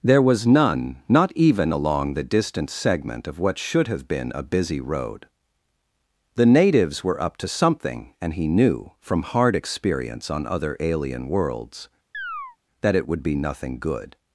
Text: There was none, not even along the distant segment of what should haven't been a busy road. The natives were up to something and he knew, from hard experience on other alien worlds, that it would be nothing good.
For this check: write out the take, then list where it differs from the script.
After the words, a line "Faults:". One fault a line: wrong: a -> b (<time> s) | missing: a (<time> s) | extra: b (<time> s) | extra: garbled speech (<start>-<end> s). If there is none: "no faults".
There was none, not even along the distant segment of what should have been a busy road. The natives were up to something and he knew, from hard experience on other alien worlds, that it would be nothing good.
Faults:
wrong: haven't -> have (3.9 s)